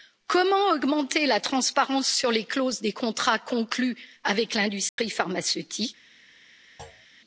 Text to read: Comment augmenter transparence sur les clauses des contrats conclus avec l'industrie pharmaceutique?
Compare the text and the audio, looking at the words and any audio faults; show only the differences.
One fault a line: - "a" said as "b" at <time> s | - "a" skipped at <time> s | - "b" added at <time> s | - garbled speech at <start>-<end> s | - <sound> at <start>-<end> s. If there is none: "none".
- "la" added at 1.2 s
- dropout at 4.9-5.0 s
- thud at 6.8-7.1 s